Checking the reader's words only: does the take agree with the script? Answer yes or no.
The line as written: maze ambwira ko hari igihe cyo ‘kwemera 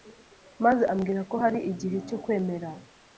yes